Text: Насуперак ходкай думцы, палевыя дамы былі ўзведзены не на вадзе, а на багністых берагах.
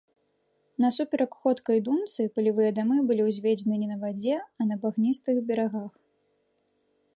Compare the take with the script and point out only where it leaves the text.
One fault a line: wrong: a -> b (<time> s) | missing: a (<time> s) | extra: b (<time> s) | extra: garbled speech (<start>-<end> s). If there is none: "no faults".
no faults